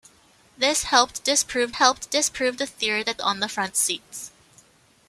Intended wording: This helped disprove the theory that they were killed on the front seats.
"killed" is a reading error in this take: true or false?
true